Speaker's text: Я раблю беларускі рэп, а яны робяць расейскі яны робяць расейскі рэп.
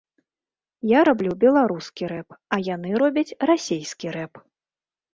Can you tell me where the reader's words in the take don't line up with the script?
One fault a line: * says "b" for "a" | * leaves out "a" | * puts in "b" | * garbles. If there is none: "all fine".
* leaves out "яны робяць расейскі"